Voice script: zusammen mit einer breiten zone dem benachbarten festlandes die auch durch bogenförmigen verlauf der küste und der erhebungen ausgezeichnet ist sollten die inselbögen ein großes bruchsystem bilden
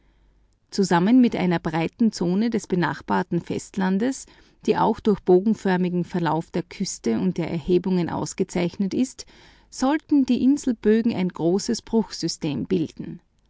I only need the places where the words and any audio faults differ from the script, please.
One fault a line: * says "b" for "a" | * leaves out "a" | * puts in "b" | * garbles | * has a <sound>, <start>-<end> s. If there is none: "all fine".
* says "des" for "dem"